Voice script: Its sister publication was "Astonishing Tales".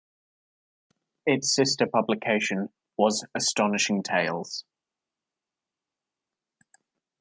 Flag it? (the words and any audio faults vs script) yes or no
no